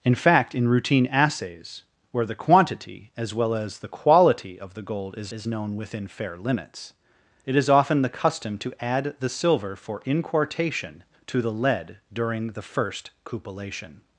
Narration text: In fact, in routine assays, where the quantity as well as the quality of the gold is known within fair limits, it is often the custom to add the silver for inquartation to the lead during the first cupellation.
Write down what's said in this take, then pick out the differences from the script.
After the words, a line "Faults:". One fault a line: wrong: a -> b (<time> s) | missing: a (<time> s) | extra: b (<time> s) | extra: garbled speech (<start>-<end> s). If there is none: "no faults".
In fact, in routine assays, where the quantity as well as the quality of the gold is is known within fair limits, it is often the custom to add the silver for inquartation to the lead during the first cupellation.
Faults:
extra: is (5.3 s)